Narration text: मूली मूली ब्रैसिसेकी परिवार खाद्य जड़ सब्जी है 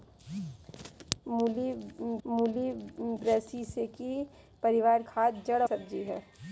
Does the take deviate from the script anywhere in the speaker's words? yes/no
no